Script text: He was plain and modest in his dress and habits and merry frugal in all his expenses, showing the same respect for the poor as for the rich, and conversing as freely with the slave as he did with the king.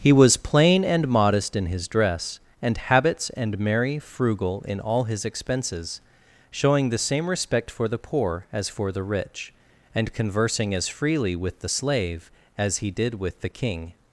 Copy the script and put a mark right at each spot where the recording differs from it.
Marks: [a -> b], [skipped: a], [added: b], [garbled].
He was plain and modest in his dress and habits and merry frugal in all his expenses, showing the same respect for the poor as for the rich, and conversing as freely with the slave as he did with the king.